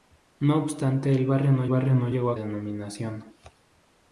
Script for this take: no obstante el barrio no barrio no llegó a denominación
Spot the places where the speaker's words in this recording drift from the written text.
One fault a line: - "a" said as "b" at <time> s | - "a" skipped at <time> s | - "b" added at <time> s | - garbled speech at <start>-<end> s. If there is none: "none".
none